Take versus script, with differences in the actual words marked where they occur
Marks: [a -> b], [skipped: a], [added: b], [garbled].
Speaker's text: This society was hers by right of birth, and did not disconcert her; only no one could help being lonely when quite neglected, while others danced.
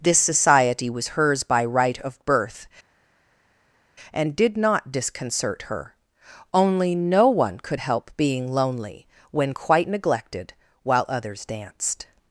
This society was hers by right of birth, and did not disconcert her; only no one could help being lonely when quite neglected, while others danced.